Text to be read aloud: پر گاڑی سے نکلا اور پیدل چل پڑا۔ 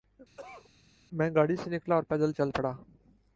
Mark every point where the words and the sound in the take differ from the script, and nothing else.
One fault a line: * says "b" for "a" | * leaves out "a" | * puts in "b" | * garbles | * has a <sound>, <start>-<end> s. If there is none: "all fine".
* has a cough, 0.4-0.7 s
* says "میں" for "پر"